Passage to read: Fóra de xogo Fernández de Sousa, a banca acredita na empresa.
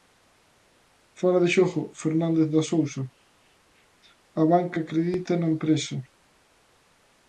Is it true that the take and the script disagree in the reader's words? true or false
false